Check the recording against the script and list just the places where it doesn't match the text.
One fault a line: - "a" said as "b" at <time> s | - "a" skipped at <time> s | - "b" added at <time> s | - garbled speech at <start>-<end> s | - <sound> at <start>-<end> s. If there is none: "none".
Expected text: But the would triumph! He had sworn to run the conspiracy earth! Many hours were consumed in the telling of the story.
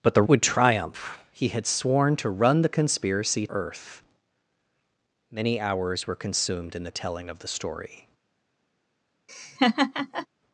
- laugh at 9.3-10.3 s